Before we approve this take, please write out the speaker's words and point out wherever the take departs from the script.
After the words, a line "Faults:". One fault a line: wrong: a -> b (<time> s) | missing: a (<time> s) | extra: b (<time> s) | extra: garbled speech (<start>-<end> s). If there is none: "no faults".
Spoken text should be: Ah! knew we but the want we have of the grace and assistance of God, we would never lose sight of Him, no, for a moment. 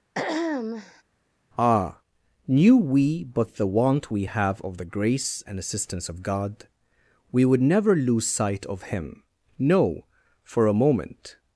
Ah! knew we but the want we have of the grace and assistance of God, we would never lose sight of Him, no, for a moment.
Faults:
no faults